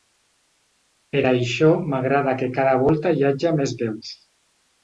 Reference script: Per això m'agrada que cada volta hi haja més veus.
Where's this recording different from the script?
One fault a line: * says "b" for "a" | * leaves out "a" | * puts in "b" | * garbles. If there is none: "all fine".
all fine